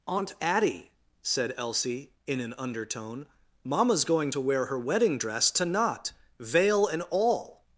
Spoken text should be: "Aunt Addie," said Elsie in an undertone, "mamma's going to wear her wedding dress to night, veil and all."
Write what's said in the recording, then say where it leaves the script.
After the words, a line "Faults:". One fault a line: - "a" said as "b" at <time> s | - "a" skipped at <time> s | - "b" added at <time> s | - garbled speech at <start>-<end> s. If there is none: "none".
"Aunt Addie," said Elsie in an undertone, "mamma's going to wear her wedding dress to knot, veil and all."
Faults:
- "night" said as "knot" at 5.6 s